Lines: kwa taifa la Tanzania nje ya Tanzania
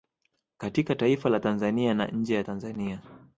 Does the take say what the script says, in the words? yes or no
no